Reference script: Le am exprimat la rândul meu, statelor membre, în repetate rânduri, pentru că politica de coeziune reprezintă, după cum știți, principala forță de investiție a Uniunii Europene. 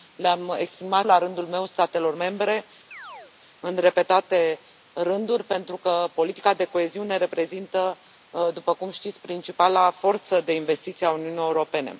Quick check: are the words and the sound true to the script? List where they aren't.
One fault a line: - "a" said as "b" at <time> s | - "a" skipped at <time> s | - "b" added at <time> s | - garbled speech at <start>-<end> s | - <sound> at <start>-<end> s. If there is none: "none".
- chirp at 2.9-3.3 s